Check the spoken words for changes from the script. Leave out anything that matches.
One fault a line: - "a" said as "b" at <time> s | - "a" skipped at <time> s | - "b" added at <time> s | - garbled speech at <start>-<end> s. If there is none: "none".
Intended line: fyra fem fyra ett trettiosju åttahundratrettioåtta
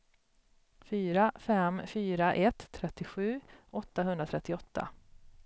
none